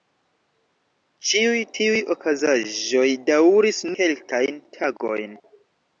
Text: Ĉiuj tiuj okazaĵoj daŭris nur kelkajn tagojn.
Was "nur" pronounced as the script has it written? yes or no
no